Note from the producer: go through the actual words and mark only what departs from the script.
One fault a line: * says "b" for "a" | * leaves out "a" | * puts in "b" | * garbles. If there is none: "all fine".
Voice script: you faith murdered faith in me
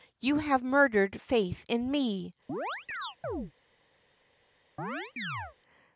* says "have" for "faith"